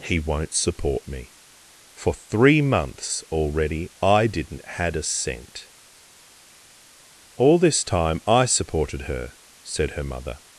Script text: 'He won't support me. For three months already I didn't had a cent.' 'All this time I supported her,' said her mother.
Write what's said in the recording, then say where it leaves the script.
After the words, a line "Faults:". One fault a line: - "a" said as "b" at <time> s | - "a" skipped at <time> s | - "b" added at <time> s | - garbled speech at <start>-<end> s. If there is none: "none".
'He won't support me. For three months already I didn't had a cent.' 'All this time I supported her,' said her mother.
Faults:
none